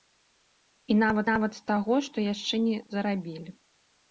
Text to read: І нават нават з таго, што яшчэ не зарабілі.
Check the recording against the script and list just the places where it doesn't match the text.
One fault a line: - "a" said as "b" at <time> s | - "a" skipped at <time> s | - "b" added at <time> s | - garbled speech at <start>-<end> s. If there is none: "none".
none